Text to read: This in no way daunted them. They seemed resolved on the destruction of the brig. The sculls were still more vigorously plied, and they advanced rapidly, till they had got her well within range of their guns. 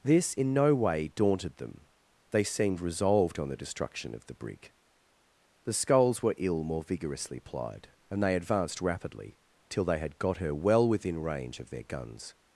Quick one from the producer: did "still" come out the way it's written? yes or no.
no